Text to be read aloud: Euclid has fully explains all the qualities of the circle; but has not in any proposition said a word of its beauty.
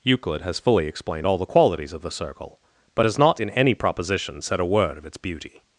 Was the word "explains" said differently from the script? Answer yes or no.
yes